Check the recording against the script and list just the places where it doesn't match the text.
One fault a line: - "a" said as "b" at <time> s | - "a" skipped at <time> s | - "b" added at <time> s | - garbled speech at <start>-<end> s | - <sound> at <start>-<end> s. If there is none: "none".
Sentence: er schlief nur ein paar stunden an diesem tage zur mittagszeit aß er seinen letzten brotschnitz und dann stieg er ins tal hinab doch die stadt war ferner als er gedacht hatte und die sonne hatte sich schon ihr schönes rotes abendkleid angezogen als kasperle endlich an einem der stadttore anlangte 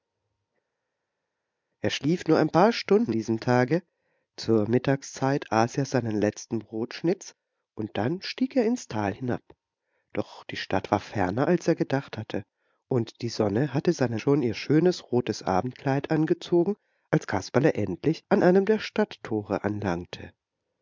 - "an" skipped at 3.1 s
- "sich" said as "seinen" at 13.9 s